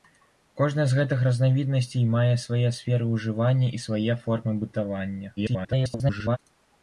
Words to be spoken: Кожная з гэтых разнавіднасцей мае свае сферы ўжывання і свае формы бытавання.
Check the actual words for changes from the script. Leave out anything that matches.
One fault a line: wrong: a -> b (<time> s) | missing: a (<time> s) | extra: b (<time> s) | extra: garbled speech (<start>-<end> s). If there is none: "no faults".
extra: garbled speech (5.4-6.4 s)